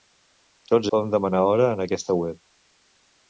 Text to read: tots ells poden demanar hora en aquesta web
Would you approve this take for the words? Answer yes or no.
no